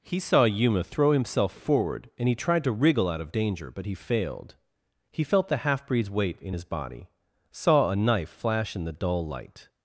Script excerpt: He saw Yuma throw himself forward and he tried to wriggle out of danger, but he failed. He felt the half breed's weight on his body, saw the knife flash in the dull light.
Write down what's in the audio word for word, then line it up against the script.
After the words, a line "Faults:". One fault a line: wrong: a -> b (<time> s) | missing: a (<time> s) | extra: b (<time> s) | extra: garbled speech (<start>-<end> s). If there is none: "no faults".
He saw Yuma throw himself forward and he tried to wriggle out of danger, but he failed. He felt the half breed's weight in his body, saw a knife flash in the dull light.
Faults:
wrong: on -> in (6.4 s)
wrong: the -> a (7.9 s)